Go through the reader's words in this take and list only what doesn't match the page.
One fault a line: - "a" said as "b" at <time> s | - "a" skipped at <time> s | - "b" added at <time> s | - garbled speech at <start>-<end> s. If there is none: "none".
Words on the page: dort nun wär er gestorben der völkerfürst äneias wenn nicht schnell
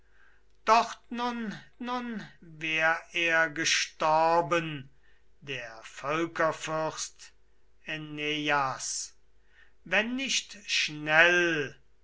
- "nun" added at 1.8 s